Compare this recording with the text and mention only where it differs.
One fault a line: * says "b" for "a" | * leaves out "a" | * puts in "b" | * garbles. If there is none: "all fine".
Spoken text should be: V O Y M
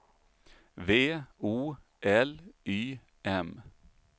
* puts in "L"